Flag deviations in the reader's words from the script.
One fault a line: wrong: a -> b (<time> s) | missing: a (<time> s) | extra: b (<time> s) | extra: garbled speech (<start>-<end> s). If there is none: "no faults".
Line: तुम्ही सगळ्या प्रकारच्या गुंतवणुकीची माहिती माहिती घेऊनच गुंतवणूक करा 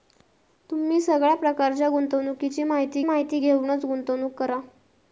no faults